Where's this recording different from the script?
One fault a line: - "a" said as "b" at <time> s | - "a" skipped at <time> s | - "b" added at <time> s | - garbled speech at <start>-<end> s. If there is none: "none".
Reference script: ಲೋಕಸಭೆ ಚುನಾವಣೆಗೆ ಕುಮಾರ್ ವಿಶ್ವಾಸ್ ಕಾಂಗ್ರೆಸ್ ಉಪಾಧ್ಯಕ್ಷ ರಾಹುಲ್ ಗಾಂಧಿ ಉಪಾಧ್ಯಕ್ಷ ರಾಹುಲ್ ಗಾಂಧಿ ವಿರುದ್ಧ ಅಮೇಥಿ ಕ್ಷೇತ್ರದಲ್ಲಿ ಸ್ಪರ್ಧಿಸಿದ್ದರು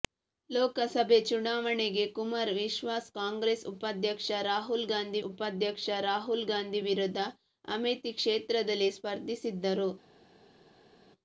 none